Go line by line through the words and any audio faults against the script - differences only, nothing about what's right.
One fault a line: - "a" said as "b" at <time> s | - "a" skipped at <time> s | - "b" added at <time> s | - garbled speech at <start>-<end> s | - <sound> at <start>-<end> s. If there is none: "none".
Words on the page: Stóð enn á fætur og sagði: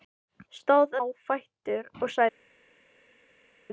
- "enn" skipped at 0.9 s